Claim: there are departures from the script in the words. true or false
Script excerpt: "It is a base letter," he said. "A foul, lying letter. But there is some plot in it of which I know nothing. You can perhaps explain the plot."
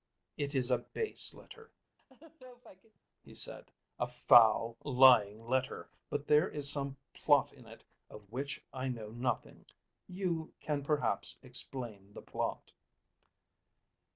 false